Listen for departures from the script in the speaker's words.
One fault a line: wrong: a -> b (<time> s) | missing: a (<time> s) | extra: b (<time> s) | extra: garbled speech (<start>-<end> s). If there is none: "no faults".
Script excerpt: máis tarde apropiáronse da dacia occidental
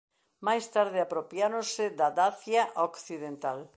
no faults